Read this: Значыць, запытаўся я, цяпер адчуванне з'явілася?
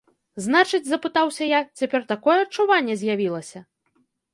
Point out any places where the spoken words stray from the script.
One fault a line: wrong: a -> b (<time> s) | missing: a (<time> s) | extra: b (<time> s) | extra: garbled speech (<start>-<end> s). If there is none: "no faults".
extra: такое (2.2 s)